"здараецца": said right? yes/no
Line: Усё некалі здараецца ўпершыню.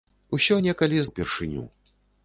no